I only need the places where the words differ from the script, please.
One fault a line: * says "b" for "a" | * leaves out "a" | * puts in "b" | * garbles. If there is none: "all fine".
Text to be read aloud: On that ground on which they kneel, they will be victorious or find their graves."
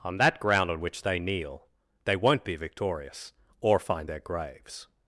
* says "won't" for "will"